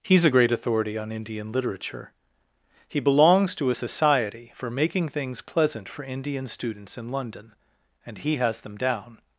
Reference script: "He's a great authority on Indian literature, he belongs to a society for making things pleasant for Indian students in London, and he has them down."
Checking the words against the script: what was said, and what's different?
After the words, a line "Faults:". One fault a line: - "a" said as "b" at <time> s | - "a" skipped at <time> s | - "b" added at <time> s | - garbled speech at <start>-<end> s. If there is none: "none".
"He's a great authority on Indian literature, he belongs to a society for making things pleasant for Indian students in London, and he has them down."
Faults:
none